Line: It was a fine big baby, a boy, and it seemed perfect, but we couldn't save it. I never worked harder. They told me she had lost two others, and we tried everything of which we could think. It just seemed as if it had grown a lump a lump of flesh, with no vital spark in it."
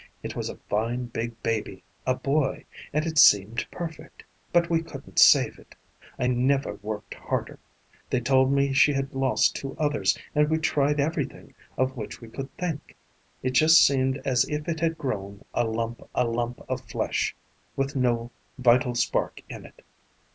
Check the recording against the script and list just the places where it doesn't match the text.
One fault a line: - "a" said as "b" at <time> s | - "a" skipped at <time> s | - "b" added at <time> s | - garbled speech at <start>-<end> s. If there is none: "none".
none